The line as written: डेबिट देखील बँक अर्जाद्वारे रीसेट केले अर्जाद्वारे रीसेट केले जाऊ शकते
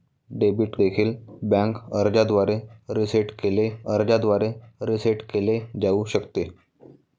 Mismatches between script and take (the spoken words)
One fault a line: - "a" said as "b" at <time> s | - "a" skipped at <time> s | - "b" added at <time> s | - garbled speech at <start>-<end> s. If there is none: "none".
none